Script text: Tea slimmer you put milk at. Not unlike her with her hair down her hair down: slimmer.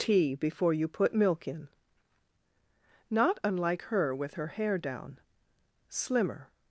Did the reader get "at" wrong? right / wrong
wrong